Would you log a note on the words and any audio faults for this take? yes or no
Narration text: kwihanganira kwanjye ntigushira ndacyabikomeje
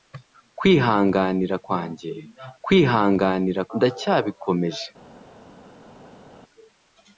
yes